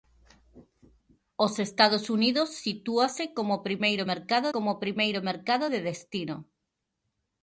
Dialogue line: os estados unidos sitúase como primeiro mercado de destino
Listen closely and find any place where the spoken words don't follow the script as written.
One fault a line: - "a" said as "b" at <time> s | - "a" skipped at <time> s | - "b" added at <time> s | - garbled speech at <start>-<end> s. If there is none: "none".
- "como primeiro mercado" added at 4.5 s